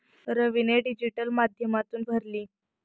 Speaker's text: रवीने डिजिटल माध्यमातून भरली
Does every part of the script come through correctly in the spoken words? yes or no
yes